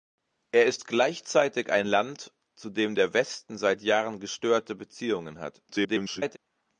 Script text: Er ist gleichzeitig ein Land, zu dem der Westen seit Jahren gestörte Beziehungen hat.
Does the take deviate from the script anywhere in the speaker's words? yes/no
yes